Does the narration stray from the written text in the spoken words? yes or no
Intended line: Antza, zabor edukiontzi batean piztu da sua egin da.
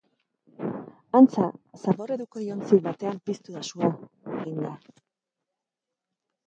no